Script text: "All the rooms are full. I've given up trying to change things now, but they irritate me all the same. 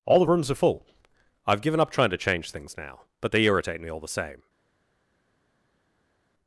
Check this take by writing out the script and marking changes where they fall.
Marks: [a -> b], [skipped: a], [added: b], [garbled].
"All the rooms are full. I've given up trying to change things now, but they irritate me all the same.